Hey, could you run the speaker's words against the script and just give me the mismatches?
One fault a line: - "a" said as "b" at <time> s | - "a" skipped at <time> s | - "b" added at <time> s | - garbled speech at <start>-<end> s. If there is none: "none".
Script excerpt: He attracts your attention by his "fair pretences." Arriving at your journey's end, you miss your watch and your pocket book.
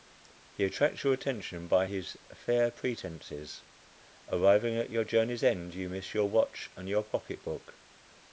none